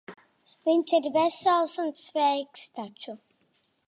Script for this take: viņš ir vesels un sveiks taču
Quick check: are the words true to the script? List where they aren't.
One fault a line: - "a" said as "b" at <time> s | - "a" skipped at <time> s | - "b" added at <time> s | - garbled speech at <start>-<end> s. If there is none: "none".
none